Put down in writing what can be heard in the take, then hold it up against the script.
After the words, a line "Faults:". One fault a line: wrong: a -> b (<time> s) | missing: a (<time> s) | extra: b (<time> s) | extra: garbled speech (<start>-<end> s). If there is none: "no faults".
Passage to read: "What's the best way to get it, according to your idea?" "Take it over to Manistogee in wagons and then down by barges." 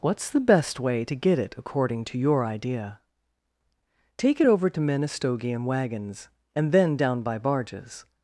"What's the best way to get it, according to your idea?" "Take it over to Manistogee in wagons and then down by barges."
Faults:
no faults